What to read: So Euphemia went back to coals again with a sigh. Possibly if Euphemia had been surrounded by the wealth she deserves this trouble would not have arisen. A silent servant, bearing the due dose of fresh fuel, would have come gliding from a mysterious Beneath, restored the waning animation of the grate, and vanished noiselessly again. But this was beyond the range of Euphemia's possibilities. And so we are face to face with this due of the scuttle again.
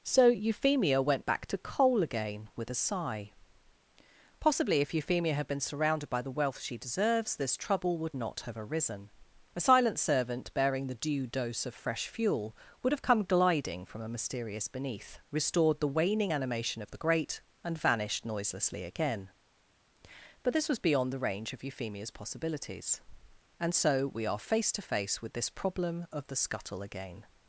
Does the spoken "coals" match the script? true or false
false